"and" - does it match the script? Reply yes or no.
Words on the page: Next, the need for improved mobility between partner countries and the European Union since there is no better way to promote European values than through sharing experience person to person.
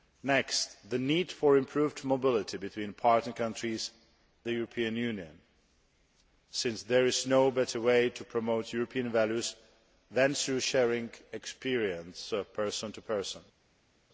no